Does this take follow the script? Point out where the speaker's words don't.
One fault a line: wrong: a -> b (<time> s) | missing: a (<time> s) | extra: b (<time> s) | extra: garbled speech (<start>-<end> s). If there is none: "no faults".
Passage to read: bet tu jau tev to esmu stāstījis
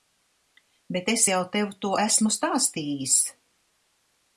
wrong: tu -> es (1.1 s)